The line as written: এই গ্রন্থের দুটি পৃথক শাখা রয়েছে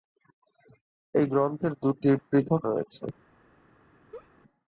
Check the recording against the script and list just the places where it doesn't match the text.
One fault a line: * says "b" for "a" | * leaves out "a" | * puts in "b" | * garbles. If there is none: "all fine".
* leaves out "শাখা"